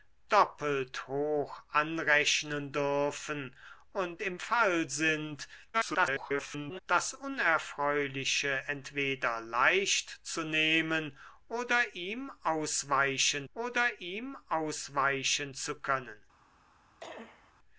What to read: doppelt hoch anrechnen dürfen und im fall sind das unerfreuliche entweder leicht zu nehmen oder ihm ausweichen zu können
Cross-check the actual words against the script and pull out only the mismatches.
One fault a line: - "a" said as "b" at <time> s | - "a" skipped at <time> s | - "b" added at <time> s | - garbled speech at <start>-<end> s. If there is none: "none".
- garbled speech at 5.7-6.8 s
- "oder ihm ausweichen" added at 13.5 s